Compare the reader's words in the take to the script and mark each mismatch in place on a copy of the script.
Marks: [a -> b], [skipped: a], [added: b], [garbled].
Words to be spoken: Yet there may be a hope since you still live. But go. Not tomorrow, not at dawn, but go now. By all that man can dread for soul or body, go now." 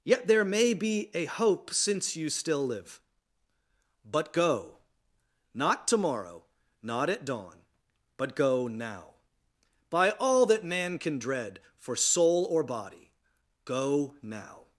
Yet there may be a hope since you still live. But go. Not tomorrow, not at dawn, but go now. By all that man can dread for soul or body, go now."